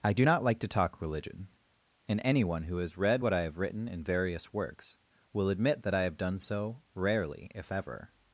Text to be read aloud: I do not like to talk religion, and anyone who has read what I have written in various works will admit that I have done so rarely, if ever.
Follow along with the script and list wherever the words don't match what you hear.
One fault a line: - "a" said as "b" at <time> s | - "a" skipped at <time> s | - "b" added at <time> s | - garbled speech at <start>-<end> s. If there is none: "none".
none